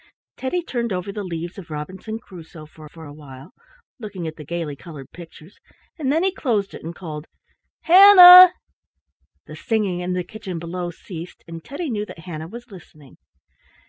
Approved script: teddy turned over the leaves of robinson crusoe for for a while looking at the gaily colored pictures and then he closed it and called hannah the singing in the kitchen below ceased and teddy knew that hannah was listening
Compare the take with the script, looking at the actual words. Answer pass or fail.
pass